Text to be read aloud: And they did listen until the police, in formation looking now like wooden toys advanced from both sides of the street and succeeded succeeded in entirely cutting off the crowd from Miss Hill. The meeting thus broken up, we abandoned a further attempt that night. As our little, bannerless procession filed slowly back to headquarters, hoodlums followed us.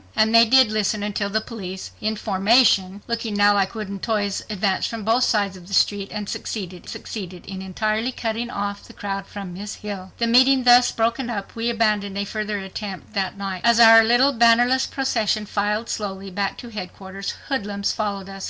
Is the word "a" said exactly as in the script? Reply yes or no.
yes